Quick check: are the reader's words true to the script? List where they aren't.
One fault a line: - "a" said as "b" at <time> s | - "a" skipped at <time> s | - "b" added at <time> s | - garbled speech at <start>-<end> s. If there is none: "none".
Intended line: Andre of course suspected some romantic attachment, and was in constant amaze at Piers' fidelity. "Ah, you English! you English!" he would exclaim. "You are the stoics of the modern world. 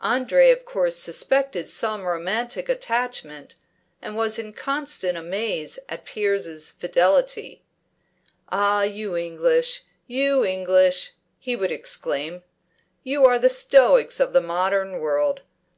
none